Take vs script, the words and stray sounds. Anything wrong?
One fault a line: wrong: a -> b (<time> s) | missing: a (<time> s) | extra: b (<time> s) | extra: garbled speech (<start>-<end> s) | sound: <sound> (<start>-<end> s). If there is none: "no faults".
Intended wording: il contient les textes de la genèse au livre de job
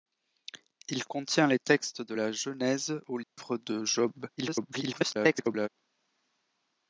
sound: dropout (3.2-3.4 s)
extra: garbled speech (4.4-5.7 s)